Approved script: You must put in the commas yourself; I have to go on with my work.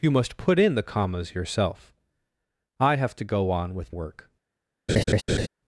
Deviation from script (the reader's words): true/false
true